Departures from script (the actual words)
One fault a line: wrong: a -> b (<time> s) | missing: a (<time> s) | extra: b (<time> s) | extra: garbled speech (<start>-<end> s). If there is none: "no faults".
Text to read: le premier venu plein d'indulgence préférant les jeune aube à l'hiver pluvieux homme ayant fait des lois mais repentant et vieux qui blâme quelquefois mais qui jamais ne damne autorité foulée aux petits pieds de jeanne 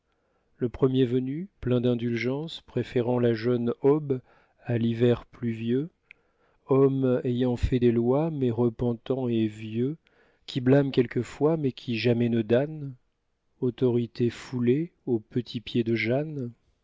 wrong: les -> la (3.2 s)